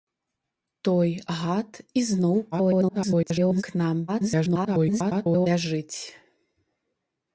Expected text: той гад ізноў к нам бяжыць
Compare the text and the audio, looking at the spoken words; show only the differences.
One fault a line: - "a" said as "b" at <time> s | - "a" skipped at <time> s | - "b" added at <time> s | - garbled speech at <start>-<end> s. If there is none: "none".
- garbled speech at 2.5-3.6 s
- garbled speech at 4.1-5.5 s